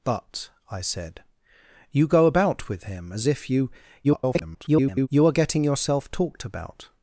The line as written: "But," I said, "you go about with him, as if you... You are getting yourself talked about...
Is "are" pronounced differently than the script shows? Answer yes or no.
no